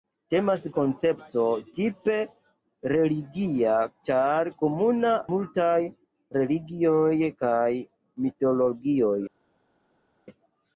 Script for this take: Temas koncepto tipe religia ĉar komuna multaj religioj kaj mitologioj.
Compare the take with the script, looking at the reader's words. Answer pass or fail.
pass